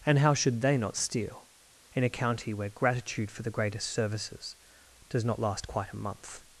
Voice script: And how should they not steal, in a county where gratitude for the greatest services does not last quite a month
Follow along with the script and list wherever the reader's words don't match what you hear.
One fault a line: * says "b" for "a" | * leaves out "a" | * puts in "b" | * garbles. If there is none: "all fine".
all fine